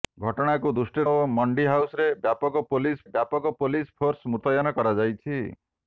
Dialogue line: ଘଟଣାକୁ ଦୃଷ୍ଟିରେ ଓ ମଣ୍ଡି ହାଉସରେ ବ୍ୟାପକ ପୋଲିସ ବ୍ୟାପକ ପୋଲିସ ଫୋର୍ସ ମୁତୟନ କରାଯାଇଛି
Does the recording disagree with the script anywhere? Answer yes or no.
no